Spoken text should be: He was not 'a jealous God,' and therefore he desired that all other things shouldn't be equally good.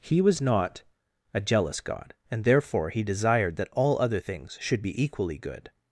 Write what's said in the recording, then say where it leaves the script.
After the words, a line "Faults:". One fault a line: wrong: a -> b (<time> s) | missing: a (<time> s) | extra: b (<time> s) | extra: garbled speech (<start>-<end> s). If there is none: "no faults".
He was not 'a jealous God,' and therefore he desired that all other things should be equally good.
Faults:
wrong: shouldn't -> should (4.6 s)